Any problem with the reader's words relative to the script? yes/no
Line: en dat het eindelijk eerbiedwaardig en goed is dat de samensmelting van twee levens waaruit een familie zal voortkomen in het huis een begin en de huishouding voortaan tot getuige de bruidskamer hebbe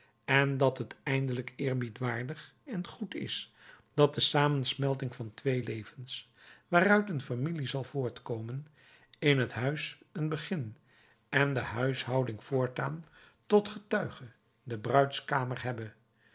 no